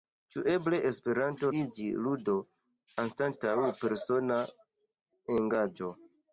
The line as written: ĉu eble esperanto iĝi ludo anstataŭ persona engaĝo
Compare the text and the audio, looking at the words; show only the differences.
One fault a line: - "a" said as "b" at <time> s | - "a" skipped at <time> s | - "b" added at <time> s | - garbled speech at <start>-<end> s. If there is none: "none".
none